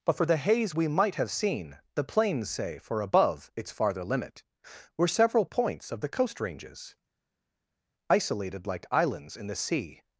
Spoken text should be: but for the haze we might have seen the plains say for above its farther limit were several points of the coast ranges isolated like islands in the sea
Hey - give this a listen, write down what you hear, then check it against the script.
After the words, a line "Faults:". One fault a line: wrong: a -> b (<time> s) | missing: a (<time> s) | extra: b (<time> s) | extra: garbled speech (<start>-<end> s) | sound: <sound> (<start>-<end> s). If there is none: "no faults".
but for the haze we might have seen the plains say for above its farther limit were several points of the coast ranges isolated like islands in the sea
Faults:
no faults